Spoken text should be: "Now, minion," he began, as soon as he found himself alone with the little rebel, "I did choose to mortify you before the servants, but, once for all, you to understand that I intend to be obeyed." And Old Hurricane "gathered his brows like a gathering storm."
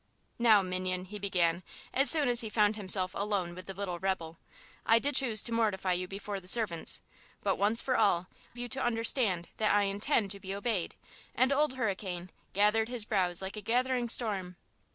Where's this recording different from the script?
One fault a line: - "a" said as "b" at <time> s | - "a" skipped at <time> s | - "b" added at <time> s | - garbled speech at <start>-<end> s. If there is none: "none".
none